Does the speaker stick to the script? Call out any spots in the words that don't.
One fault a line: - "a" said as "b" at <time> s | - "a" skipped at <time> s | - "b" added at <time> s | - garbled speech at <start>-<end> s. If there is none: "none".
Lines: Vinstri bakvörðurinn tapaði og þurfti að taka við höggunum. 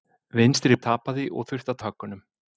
- "bakvörðurinn" skipped at 0.8 s
- "taka" skipped at 1.8 s